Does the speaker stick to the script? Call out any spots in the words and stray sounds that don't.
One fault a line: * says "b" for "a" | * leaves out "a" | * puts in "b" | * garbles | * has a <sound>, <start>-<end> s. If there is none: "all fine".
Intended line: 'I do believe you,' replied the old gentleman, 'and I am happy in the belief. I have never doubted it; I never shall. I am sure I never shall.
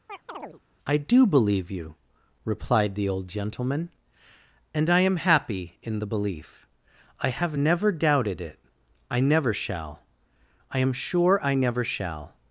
* has a chirp, 0.1-0.6 s